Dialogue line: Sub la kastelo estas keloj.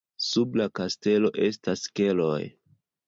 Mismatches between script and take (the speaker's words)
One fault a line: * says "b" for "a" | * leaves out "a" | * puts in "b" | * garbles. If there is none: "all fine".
all fine